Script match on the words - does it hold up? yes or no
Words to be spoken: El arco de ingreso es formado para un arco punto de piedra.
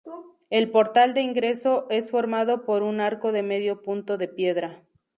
no